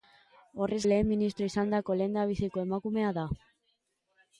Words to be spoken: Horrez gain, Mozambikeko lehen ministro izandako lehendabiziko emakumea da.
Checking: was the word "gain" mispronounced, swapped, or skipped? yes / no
yes